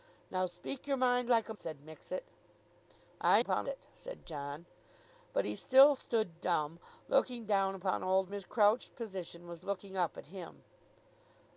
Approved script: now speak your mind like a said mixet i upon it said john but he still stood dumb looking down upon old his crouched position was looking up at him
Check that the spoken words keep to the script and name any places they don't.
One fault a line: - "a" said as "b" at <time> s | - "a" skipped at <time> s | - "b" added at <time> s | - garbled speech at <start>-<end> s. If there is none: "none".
none